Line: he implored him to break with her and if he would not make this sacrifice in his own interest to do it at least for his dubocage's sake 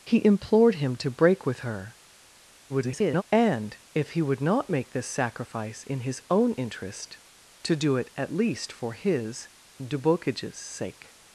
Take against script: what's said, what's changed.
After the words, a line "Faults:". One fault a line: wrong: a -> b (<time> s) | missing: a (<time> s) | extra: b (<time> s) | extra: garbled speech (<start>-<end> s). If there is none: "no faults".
he implored him to break with her [garbled] and if he would not make this sacrifice in his own interest to do it at least for his dubocage's sake
Faults:
extra: garbled speech (2.7-3.2 s)